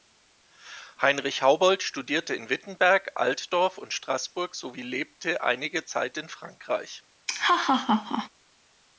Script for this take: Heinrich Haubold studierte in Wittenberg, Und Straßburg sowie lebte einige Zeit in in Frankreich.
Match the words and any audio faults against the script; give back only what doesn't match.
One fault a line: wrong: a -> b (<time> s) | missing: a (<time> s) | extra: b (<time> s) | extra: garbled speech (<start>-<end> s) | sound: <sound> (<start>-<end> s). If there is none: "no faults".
extra: Altdorf (3.1 s)
missing: in (6.3 s)
sound: laugh (7.3-8.3 s)